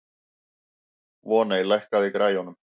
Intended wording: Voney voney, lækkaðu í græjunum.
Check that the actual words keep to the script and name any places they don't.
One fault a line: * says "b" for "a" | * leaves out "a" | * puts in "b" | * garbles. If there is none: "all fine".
* leaves out "voney"